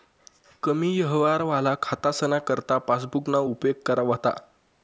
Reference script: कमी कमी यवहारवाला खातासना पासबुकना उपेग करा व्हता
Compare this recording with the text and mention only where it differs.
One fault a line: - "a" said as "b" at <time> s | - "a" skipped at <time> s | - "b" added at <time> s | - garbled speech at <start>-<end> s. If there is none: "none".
- "कमी" skipped at 0.9 s
- "करता" added at 2.5 s